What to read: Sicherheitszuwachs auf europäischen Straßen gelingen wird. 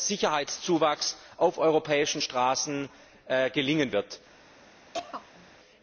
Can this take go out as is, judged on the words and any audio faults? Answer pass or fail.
fail